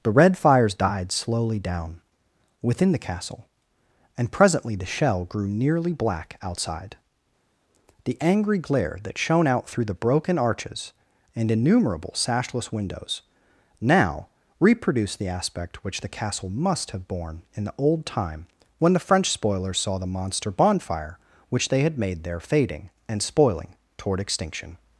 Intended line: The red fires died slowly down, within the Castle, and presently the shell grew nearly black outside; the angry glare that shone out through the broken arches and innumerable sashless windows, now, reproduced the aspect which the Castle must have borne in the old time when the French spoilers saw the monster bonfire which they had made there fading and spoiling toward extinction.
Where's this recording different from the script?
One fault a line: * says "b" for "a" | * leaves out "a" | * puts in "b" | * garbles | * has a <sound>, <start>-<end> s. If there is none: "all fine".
all fine